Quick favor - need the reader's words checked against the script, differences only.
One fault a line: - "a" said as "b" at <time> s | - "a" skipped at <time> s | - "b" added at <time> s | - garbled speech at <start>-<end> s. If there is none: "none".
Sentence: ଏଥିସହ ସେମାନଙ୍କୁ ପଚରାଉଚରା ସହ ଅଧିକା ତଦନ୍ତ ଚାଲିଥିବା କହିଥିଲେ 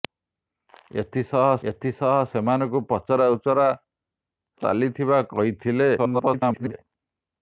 - "ଏଥିସହ" added at 1.7 s
- "ସହ ଅଧିକା ତଦନ୍ତ" skipped at 3.6 s
- garbled speech at 6.0-6.7 s